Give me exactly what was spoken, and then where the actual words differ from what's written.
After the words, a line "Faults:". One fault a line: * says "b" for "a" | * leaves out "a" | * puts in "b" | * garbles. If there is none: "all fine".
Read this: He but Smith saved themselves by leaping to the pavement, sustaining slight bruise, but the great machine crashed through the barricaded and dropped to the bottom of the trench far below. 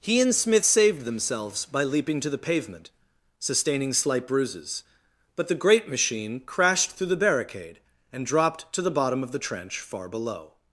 He and Smith saved themselves by leaping to the pavement, sustaining slight bruises, but the great machine crashed through the barricade and dropped to the bottom of the trench far below.
Faults:
* says "and" for "but"
* says "bruises" for "bruise"
* says "barricade" for "barricaded"